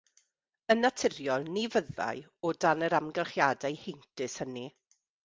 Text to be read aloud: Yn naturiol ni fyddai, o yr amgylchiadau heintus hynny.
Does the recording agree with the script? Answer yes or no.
no